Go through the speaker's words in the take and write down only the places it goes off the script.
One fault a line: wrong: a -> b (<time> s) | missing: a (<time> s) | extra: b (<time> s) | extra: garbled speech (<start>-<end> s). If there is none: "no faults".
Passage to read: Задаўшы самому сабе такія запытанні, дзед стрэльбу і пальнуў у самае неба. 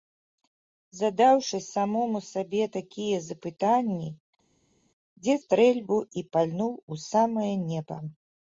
no faults